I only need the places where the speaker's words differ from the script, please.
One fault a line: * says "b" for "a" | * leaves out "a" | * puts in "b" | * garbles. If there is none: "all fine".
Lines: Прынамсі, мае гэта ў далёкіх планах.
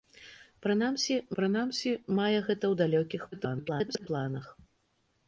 * puts in "прынамсі"
* garbles